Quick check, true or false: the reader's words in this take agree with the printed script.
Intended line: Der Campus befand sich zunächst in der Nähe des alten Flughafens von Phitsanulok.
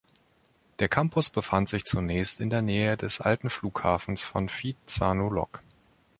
true